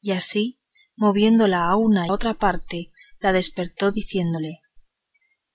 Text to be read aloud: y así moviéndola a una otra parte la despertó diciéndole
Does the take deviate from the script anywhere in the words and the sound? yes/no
no